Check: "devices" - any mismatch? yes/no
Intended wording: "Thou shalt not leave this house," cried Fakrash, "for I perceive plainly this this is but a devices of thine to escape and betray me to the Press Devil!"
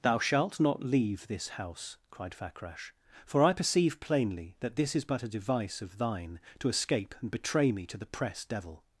yes